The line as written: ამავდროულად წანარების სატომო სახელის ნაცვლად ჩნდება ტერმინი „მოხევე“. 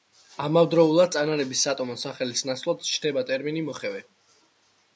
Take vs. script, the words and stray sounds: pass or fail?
pass